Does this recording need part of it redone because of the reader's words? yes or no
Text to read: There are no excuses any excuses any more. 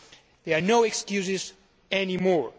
yes